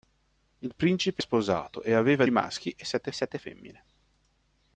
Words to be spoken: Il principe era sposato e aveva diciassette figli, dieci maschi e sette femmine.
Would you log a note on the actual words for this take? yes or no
yes